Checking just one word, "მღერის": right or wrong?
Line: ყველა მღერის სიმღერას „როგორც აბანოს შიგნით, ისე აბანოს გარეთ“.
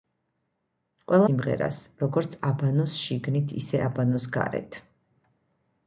wrong